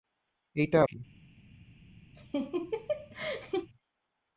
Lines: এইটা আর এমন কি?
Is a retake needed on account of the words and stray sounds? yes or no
yes